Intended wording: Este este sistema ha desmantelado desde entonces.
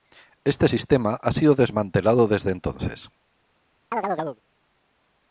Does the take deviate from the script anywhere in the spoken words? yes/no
yes